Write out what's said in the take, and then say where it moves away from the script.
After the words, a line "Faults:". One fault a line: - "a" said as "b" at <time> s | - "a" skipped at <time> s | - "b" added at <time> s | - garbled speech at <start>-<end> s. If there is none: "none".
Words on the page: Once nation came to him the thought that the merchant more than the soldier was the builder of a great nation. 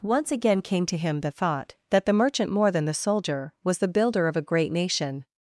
Once again came to him the thought that the merchant more than the soldier was the builder of a great nation.
Faults:
- "nation" said as "again" at 0.3 s